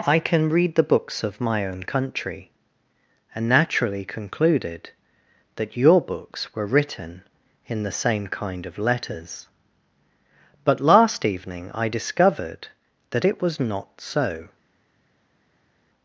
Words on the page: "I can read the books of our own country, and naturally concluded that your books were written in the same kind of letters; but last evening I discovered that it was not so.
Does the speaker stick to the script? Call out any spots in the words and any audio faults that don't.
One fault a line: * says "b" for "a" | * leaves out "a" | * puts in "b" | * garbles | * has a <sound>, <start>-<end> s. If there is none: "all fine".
* says "my" for "our"